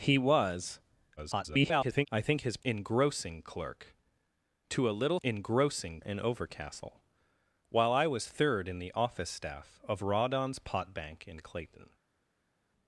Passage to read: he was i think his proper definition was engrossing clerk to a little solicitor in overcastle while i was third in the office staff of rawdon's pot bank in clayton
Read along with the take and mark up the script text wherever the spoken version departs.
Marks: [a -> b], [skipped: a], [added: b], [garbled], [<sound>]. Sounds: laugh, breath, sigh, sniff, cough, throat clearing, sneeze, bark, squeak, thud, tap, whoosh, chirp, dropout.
he was [garbled] i think his [skipped: proper definition was] engrossing clerk to a little [solicitor -> engrossing] in overcastle while i was third in the office staff of rawdon's pot bank in clayton